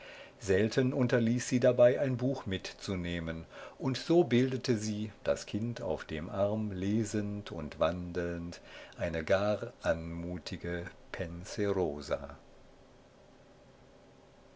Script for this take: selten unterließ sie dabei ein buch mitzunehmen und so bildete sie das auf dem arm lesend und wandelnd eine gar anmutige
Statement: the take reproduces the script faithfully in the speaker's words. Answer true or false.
false